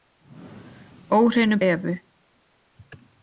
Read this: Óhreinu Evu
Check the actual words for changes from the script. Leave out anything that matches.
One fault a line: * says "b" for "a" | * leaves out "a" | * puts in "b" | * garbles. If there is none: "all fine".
all fine